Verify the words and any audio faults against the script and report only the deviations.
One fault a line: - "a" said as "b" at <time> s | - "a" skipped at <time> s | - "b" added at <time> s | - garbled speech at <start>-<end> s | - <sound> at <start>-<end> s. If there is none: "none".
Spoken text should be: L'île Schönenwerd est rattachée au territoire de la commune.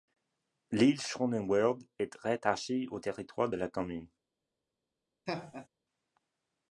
- laugh at 5.3-5.7 s